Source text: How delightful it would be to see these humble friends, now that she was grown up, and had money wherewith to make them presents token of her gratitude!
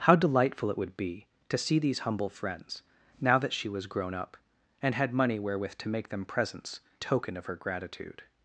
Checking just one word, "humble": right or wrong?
right